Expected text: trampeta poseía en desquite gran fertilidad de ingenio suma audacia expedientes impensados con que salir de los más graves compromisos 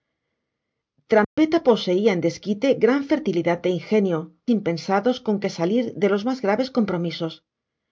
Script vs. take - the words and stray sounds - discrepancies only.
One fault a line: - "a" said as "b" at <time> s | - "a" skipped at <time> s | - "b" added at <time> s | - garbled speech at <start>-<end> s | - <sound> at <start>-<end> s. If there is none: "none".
- dropout at 1.2-1.4 s
- "suma audacia expedientes" skipped at 4.2 s